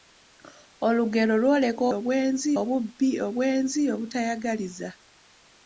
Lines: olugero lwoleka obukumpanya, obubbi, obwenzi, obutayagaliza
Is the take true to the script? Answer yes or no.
no